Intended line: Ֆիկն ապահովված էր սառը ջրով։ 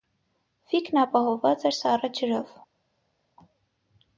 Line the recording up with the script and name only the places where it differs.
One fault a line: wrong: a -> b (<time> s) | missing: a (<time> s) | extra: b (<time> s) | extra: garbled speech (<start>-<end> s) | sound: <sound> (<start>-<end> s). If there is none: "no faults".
no faults